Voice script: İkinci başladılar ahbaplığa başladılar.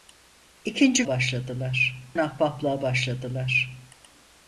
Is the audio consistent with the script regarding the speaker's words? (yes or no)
yes